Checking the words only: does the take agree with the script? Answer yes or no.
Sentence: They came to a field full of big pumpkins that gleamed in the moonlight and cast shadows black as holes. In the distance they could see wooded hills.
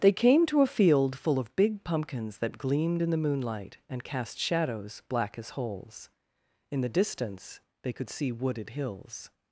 yes